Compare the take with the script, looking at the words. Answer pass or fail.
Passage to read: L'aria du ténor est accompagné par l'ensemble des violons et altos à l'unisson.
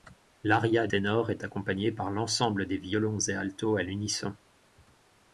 fail